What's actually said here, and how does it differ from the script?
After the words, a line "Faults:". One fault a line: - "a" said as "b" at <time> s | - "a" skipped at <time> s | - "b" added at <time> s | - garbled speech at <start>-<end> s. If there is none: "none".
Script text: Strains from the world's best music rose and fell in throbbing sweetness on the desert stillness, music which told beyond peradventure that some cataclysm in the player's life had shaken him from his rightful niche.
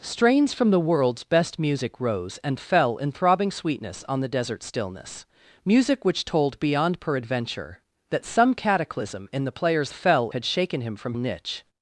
Strains from the world's best music rose and fell in throbbing sweetness on the desert stillness, music which told beyond peradventure that some cataclysm in the player's fell had shaken him from niche.
Faults:
- "life" said as "fell" at 9.9 s
- "his rightful" skipped at 11.1 s